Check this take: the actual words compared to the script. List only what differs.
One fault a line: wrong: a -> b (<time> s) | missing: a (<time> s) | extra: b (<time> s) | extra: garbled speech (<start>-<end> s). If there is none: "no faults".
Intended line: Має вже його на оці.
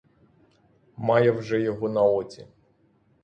no faults